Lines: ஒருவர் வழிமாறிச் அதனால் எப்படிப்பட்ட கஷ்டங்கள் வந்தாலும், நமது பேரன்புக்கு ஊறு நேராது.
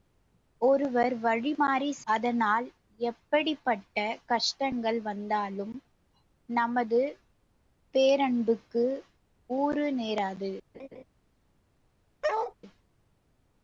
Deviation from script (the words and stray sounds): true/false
true